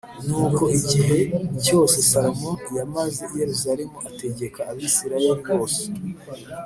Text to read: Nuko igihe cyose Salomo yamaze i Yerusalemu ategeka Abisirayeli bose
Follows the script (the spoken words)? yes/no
yes